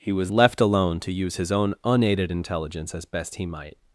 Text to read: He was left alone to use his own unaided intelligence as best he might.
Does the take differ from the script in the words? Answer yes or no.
no